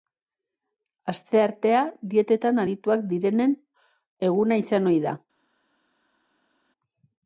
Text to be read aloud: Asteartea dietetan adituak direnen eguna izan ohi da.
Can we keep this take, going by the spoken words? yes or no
yes